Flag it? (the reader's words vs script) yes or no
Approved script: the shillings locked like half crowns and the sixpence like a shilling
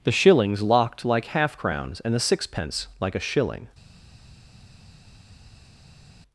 no